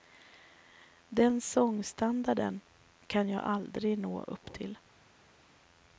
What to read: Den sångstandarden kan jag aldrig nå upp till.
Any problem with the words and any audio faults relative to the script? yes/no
no